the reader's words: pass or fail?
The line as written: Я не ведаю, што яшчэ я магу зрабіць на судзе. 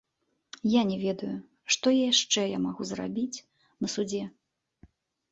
pass